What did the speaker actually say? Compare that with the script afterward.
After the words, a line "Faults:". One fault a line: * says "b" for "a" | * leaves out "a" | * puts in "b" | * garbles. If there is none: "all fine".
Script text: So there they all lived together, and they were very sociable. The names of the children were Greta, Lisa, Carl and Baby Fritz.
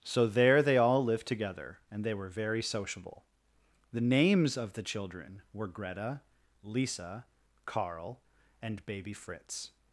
So there they all lived together, and they were very sociable. The names of the children were Greta, Lisa, Carl and Baby Fritz.
Faults:
all fine